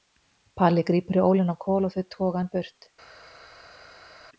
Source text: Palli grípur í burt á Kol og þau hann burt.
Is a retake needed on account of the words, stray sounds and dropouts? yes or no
yes